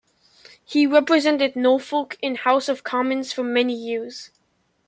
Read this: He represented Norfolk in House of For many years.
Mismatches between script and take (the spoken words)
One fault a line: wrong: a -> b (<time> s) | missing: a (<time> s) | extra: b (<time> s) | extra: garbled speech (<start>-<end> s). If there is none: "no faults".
extra: Commons (2.8 s)